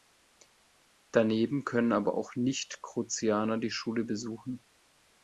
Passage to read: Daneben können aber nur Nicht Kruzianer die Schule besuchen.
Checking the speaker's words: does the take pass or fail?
fail